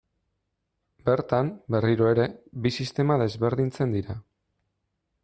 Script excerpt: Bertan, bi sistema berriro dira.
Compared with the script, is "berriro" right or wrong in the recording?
wrong